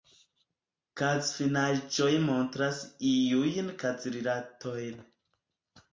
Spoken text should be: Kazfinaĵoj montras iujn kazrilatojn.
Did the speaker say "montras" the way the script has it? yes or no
yes